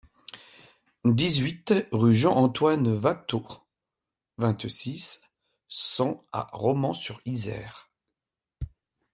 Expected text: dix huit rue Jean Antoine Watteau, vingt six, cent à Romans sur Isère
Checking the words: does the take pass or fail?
pass